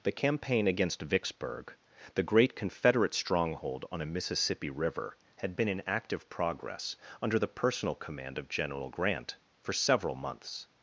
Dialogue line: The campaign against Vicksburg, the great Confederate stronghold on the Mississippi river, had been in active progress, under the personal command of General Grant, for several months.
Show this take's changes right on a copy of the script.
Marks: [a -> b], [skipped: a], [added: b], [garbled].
The campaign against Vicksburg, the great Confederate stronghold on [the -> a] Mississippi river, had been in active progress, under the personal command of General Grant, for several months.